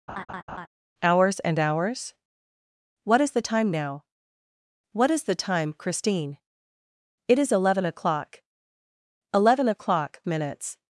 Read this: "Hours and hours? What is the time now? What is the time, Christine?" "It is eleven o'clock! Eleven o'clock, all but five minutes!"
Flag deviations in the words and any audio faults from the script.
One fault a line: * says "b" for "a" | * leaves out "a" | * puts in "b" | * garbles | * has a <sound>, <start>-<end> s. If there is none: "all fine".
* has a laugh, 0.1-0.7 s
* leaves out "all but five"